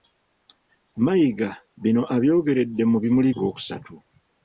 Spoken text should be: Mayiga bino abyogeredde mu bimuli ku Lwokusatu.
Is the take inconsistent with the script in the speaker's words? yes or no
no